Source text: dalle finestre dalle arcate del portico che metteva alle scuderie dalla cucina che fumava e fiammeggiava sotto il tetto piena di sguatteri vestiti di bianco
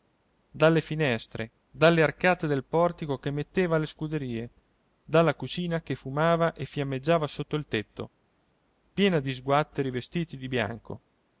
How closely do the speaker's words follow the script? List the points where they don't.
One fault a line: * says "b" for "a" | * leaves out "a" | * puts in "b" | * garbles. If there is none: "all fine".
all fine